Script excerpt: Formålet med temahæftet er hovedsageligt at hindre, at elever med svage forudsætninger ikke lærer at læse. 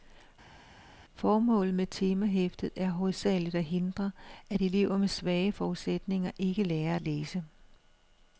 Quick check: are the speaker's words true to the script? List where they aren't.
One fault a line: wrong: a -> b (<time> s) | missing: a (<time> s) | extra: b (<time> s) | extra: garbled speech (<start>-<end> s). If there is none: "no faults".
no faults